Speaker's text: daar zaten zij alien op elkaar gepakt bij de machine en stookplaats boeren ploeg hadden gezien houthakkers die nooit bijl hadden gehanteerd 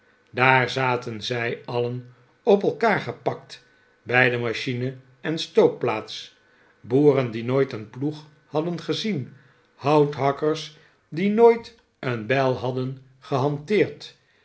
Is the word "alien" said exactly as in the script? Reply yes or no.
yes